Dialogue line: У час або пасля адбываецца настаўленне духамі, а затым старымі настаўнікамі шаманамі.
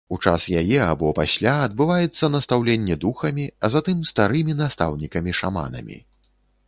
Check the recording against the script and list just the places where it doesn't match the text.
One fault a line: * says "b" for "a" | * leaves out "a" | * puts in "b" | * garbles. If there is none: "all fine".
* puts in "яе"